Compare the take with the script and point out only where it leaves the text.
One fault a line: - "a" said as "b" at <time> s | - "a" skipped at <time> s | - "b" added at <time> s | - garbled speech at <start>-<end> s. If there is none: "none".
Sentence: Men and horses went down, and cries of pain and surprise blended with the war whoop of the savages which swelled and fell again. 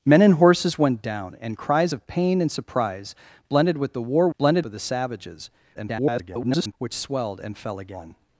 - "whoop" said as "blended" at 4.4 s
- garbled speech at 5.7-6.7 s